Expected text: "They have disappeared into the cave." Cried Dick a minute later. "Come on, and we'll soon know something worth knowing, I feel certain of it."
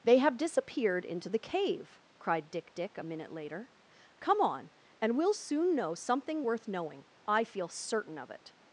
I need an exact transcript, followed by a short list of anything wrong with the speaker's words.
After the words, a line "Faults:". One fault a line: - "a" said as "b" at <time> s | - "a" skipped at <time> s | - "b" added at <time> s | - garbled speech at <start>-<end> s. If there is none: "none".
"They have disappeared into the cave." Cried Dick Dick a minute later. "Come on, and we'll soon know something worth knowing, I feel certain of it."
Faults:
- "Dick" added at 2.7 s